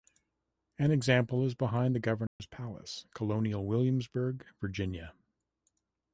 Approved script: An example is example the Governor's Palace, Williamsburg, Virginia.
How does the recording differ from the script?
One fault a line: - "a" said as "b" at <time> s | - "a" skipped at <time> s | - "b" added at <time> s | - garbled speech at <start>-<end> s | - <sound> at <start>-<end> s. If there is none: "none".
- "example" said as "behind" at 1.5 s
- dropout at 2.3-2.4 s
- "Colonial" added at 3.1 s